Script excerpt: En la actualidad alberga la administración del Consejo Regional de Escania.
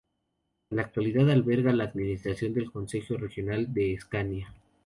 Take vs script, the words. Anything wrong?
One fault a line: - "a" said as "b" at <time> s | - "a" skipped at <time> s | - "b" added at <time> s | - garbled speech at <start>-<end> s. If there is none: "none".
none